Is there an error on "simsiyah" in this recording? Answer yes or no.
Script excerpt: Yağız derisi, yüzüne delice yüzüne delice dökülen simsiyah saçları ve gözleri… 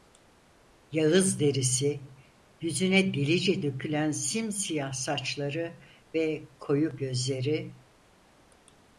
no